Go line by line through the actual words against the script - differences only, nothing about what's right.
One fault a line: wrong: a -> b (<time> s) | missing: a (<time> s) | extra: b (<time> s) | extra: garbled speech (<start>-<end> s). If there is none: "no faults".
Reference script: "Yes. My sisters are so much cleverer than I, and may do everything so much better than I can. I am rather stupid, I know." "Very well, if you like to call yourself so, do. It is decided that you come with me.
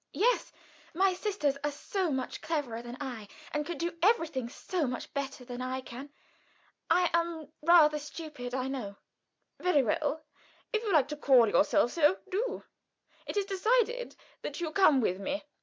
wrong: may -> can (3.7 s)